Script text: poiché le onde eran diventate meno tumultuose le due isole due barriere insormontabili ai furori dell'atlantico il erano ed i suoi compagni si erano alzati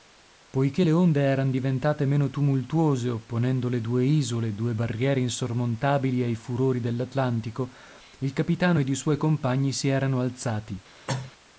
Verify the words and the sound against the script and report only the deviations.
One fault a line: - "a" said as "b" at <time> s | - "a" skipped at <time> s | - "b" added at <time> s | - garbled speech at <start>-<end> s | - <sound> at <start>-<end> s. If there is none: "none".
- "opponendo" added at 3.1 s
- "erano" said as "capitano" at 8.3 s
- cough at 11.1-11.3 s